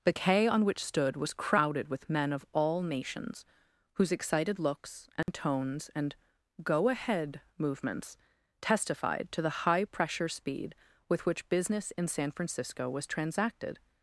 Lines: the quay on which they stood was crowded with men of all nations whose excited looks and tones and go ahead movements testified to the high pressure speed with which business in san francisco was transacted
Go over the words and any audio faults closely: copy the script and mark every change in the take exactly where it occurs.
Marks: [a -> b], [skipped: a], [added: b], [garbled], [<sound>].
the quay on which [skipped: they] stood was crowded with men of all nations whose excited looks and [dropout] tones and go ahead movements testified to the high pressure speed with which business in san francisco was transacted